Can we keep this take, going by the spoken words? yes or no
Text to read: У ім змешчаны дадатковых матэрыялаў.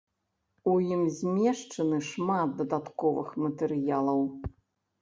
no